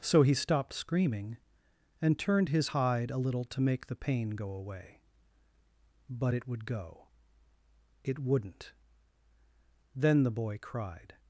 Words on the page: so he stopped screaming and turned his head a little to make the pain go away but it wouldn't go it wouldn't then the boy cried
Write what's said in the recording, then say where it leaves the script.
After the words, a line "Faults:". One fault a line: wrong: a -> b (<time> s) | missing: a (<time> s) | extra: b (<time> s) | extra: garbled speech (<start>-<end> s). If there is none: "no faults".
so he stopped screaming and turned his hide a little to make the pain go away but it would go it wouldn't then the boy cried
Faults:
wrong: head -> hide (2.6 s)
wrong: wouldn't -> would (6.5 s)